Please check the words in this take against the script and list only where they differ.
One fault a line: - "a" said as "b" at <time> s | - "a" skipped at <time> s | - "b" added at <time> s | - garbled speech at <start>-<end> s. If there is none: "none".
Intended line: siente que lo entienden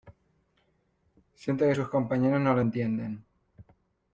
- "sus compañeros no" added at 1.7 s